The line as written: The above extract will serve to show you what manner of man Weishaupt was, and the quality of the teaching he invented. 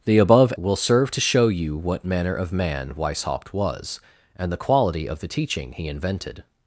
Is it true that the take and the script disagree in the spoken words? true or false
true